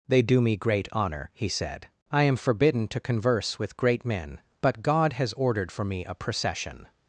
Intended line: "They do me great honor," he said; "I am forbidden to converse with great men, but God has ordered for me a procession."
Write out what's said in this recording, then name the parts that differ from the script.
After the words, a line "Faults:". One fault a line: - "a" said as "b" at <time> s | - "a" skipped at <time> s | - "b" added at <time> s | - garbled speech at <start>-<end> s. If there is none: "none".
"They do me great honor," he said; "I am forbidden to converse with great men, but God has ordered for me a procession."
Faults:
none